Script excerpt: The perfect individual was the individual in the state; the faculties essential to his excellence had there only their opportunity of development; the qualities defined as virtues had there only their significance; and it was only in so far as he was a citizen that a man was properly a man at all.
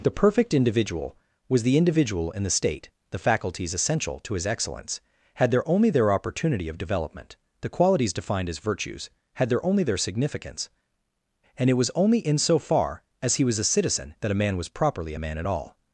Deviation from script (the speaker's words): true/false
false